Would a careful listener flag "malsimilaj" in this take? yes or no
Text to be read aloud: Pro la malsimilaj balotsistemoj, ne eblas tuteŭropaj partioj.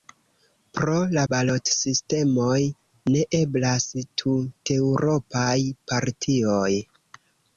yes